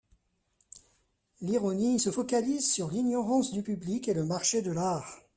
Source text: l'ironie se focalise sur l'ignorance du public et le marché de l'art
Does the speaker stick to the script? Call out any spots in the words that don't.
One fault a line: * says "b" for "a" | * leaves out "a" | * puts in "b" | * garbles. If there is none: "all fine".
all fine